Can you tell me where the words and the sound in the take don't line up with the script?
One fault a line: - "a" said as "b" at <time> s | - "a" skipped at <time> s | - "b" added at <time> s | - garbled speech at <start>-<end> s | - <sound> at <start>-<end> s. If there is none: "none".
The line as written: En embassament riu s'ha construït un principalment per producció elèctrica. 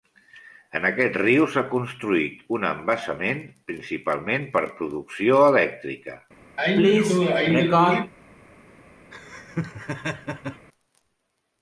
- "embassament" said as "aquest" at 0.9 s
- "embassament" added at 2.7 s
- sneeze at 6.6-8.1 s
- laugh at 9.1-10.7 s